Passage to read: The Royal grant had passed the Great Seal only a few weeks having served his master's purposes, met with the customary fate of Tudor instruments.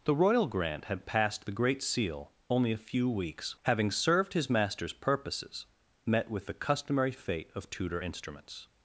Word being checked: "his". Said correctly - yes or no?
yes